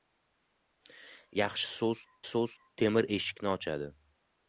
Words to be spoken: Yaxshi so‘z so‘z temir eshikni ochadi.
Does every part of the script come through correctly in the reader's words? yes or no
yes